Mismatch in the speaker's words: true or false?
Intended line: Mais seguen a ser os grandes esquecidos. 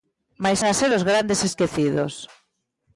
true